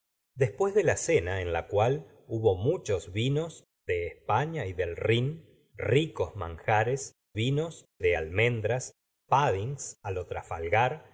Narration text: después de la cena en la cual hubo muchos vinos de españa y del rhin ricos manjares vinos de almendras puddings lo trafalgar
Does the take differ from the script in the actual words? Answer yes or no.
no